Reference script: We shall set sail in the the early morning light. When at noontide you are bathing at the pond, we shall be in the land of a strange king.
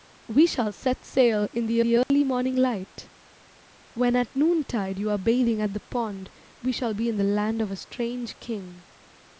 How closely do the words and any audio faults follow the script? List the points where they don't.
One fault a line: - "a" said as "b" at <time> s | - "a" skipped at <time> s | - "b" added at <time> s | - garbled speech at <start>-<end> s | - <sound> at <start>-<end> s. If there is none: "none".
- dropout at 2.0-2.1 s